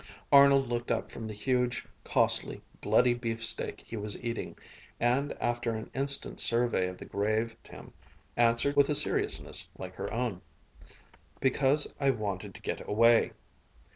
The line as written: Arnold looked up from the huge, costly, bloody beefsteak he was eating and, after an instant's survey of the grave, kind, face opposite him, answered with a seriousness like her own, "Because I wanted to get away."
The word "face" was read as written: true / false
false